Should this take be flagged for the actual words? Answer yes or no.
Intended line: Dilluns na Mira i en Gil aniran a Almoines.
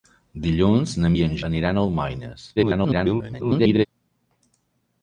yes